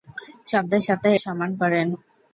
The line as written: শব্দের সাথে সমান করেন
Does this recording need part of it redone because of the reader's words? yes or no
no